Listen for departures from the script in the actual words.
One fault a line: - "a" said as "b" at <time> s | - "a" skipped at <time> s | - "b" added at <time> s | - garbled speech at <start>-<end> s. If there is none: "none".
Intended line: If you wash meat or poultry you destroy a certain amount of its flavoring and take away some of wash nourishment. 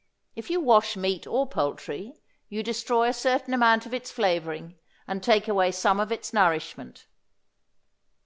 - "wash" said as "its" at 6.1 s